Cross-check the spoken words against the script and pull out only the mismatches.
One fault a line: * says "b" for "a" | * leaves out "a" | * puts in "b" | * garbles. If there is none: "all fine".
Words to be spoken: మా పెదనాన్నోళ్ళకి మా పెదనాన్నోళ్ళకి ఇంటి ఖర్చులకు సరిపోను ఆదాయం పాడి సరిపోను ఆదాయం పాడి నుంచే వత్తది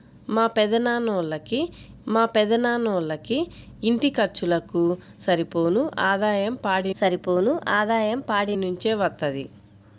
all fine